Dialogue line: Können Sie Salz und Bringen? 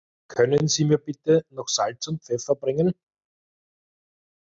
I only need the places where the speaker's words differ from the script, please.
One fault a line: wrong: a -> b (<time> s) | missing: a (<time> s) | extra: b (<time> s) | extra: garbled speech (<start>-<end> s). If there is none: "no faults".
extra: mir bitte noch (0.8 s)
extra: Pfeffer (2.2 s)